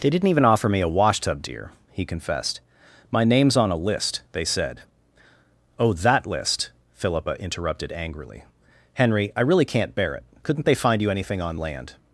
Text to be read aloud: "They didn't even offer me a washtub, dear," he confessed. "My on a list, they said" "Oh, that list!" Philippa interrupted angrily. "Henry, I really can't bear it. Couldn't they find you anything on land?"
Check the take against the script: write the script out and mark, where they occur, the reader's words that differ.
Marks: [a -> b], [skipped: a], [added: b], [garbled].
"They didn't even offer me a washtub, dear," he confessed. "My [added: name's] on a list, they said" "Oh, that list!" Philippa interrupted angrily. "Henry, I really can't bear it. Couldn't they find you anything on land?"